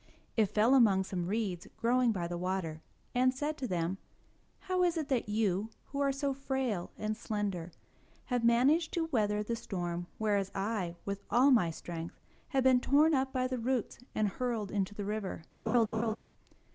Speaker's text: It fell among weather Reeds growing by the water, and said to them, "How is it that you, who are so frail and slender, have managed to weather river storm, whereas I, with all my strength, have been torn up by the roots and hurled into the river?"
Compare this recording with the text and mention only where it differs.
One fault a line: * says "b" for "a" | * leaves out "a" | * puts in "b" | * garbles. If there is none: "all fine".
* says "some" for "weather"
* says "the" for "river"